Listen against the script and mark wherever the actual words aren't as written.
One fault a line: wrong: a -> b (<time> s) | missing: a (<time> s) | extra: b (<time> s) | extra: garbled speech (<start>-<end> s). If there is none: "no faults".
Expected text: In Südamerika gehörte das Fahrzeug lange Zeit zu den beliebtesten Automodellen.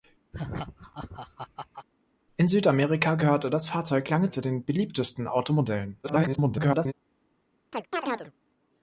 missing: Zeit (4.3 s)
extra: garbled speech (6.0-6.9 s)